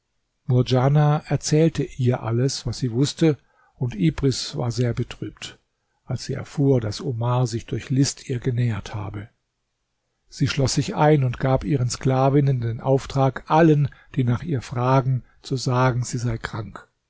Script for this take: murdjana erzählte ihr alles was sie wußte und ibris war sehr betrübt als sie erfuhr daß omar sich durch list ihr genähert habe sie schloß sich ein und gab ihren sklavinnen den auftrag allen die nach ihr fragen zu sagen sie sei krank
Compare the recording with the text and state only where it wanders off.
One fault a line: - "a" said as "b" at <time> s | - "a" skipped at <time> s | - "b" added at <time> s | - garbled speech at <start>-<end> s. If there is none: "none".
none